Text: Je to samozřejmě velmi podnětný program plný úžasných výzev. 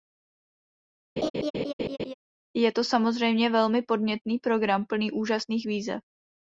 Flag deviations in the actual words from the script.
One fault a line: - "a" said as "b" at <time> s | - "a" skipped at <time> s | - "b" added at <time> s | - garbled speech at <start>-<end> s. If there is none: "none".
none